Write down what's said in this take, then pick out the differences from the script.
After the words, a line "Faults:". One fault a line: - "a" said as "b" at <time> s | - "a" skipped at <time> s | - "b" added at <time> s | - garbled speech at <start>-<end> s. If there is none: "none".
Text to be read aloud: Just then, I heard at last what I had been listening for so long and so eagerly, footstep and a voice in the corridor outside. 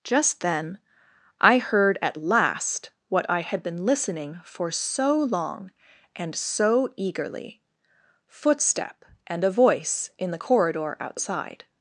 Just then, I heard at last what I had been listening for so long and so eagerly, footstep and a voice in the corridor outside.
Faults:
none